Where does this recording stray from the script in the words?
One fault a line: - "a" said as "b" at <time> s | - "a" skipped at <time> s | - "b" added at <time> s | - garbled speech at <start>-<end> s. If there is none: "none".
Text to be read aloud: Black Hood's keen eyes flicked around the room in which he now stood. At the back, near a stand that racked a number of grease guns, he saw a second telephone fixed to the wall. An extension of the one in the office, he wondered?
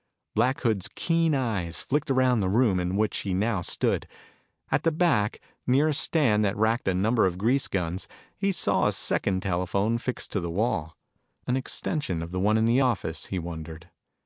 none